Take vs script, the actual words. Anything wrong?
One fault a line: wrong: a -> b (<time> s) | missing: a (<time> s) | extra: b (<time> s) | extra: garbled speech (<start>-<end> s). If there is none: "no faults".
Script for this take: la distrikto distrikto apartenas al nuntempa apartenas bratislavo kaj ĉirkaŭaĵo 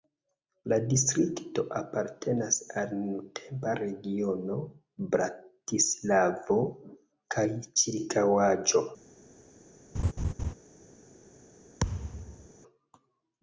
missing: distrikto (1.6 s)
wrong: apartenas -> regiono (3.8 s)